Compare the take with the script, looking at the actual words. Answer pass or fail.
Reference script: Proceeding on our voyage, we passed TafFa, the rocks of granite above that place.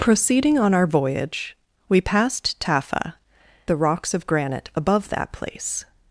pass